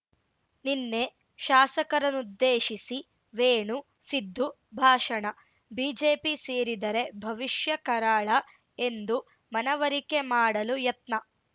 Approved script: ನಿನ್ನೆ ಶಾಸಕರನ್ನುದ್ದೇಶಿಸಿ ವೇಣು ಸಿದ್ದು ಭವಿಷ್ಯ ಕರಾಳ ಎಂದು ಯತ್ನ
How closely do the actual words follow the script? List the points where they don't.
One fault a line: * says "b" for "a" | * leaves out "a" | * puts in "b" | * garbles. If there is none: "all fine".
* puts in "ಭಾಷಣ ಬಿಜೆಪಿ ಸೇರಿದರೆ"
* puts in "ಮನವರಿಕೆ ಮಾಡಲು"